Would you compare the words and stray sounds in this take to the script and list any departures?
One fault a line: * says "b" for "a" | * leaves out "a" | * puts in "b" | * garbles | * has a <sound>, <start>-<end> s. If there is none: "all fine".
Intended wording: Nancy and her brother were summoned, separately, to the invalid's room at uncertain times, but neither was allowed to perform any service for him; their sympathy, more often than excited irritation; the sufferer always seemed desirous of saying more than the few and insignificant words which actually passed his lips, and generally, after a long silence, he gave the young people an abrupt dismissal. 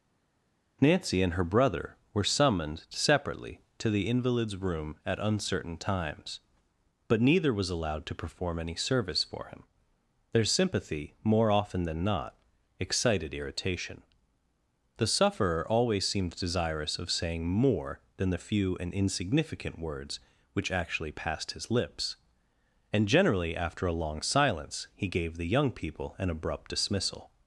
* puts in "not"